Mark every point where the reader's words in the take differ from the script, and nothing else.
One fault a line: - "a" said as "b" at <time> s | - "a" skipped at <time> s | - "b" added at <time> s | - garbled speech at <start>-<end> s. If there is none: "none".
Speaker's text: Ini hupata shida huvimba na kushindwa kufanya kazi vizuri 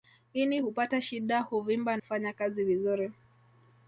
- "na kushindwa" skipped at 2.0 s